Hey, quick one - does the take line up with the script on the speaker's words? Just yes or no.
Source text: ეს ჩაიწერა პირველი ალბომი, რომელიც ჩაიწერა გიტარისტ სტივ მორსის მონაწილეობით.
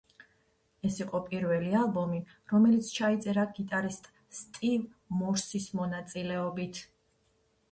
no